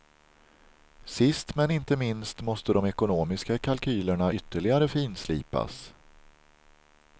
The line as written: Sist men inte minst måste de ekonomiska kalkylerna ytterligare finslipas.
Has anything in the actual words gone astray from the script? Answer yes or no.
no